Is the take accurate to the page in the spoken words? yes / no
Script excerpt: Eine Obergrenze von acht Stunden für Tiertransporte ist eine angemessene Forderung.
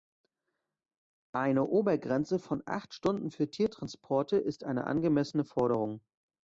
yes